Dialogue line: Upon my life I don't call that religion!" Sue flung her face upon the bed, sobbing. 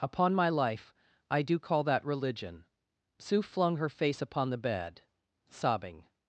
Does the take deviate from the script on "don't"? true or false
true